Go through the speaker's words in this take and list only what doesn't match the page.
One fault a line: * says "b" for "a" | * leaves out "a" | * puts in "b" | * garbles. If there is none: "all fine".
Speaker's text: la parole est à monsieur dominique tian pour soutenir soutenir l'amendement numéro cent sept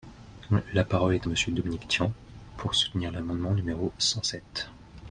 * leaves out "soutenir"